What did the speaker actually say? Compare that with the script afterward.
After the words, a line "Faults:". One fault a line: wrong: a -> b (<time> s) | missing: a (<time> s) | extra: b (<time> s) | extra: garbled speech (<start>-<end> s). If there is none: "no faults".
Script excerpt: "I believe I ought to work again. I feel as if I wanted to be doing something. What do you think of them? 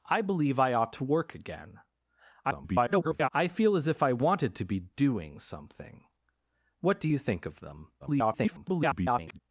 "I believe I ought to work again. [garbled] I feel as if I wanted to be doing something. What do you think of them? [garbled]
Faults:
extra: garbled speech (2.4-3.3 s)
extra: garbled speech (8.0-9.4 s)